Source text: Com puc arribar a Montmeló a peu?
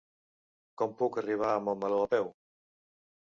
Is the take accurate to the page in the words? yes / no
yes